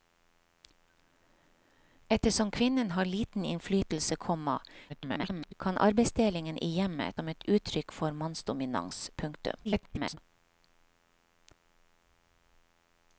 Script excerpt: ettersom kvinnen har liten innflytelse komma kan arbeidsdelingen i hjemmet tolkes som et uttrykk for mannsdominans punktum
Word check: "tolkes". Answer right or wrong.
wrong